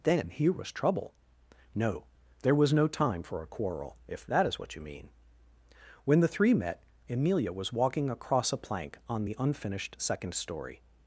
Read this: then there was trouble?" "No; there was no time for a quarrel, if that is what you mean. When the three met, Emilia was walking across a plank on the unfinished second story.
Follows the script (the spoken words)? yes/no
no